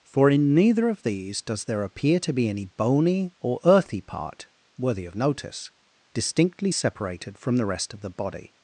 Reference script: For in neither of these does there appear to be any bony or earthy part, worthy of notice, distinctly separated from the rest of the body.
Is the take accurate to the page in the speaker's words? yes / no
yes